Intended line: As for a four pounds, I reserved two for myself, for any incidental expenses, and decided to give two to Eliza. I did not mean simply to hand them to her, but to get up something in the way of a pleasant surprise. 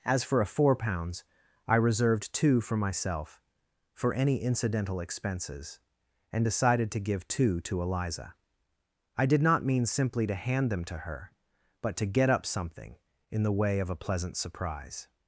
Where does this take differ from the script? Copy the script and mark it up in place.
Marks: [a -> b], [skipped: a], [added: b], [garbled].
As for a four pounds, I reserved two for myself, for any incidental expenses, and decided to give two to Eliza. I did not mean simply to hand them to her, but to get up something in the way of a pleasant surprise.